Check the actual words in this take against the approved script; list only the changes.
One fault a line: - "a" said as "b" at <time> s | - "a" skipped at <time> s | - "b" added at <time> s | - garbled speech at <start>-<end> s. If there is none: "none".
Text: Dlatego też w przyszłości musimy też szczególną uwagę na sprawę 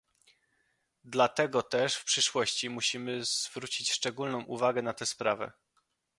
- "też" said as "zwrócić" at 3.2 s
- "tę" added at 4.9 s